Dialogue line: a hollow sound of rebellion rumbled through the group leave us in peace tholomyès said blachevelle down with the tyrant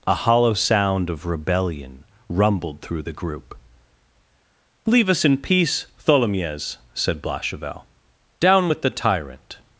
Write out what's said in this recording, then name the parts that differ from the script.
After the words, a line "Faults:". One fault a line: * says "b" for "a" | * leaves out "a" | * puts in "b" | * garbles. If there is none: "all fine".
a hollow sound of rebellion rumbled through the group leave us in peace tholomyès said blachevelle down with the tyrant
Faults:
all fine